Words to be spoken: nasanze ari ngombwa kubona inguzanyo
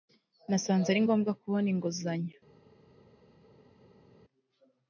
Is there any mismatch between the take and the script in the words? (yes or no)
no